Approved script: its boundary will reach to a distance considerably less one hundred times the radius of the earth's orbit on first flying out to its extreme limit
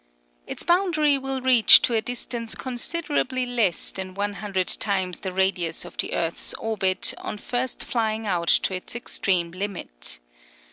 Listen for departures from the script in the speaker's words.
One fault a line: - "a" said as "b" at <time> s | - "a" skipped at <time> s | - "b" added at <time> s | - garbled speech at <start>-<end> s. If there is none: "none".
- "than" added at 3.9 s